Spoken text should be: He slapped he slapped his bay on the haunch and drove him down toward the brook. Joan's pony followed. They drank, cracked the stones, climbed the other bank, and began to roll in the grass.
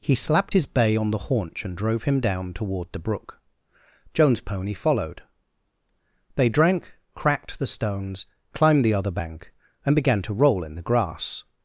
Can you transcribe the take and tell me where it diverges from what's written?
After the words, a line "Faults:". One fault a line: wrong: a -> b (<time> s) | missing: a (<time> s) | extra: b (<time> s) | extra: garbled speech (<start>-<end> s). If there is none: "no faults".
He slapped his bay on the haunch and drove him down toward the brook. Joan's pony followed. They drank, cracked the stones, climbed the other bank, and began to roll in the grass.
Faults:
missing: he slapped (0.5 s)